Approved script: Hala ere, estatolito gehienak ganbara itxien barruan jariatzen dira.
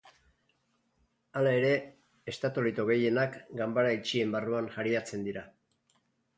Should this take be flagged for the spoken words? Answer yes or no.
no